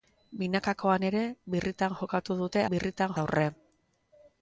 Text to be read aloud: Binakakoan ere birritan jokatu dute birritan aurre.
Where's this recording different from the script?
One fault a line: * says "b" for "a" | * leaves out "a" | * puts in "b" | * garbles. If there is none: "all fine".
all fine